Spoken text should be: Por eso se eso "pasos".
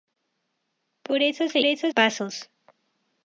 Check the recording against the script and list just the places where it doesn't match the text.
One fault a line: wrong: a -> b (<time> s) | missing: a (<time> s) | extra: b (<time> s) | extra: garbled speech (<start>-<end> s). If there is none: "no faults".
no faults